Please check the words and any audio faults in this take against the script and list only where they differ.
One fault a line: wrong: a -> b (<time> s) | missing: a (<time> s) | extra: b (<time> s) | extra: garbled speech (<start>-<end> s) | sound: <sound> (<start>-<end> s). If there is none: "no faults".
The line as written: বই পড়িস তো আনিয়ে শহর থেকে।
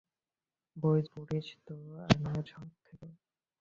no faults